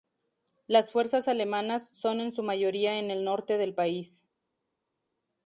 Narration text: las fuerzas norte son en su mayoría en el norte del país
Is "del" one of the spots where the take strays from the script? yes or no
no